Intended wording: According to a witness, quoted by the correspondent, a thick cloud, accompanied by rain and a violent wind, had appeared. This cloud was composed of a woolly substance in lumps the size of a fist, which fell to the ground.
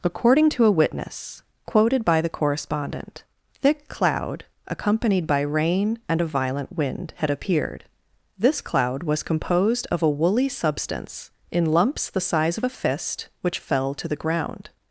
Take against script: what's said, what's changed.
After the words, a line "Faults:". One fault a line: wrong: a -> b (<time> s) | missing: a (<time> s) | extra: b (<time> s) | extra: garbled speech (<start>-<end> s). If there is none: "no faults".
According to a witness, quoted by the correspondent, thick cloud, accompanied by rain and a violent wind, had appeared. This cloud was composed of a woolly substance in lumps the size of a fist, which fell to the ground.
Faults:
missing: a (3.2 s)